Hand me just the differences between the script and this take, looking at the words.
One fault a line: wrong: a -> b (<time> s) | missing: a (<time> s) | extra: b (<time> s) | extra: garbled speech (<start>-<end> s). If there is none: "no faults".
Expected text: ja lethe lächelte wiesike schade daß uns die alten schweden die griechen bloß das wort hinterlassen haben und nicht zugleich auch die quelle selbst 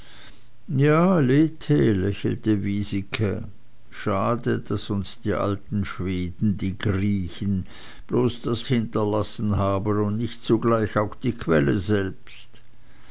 missing: wort (8.7 s)